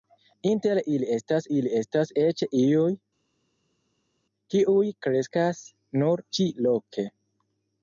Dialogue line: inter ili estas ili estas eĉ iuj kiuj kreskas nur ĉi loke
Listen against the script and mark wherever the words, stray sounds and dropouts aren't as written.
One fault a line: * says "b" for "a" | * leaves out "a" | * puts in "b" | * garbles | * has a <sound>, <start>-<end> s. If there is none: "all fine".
all fine